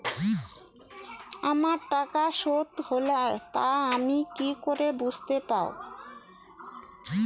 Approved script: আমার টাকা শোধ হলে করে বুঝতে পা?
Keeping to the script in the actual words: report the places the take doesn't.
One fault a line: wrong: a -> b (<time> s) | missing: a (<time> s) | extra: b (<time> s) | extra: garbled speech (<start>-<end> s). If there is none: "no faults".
extra: তা আমি কি (3.5 s)